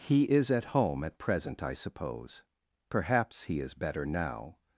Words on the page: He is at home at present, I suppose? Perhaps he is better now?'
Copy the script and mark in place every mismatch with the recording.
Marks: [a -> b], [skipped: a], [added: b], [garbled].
He is at home at present, I suppose? Perhaps he is better now?'